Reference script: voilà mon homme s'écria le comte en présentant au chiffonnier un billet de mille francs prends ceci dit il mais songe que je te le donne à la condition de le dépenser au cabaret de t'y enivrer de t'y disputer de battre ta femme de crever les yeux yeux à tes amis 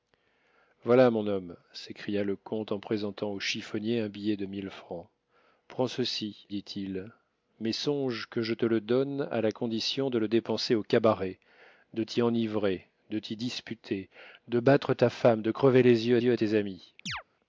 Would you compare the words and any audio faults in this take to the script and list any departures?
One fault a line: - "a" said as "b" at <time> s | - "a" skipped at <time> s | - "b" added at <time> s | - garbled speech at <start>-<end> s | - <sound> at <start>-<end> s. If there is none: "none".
- chirp at 17.1-17.2 s